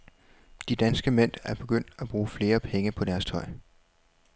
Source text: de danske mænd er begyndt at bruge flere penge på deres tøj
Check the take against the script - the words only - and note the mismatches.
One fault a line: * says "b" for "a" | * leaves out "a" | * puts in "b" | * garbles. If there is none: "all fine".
all fine